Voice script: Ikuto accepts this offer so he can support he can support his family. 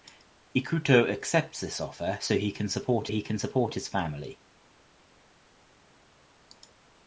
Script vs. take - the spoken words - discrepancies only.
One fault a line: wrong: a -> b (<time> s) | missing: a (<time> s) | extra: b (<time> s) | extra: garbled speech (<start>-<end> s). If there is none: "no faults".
no faults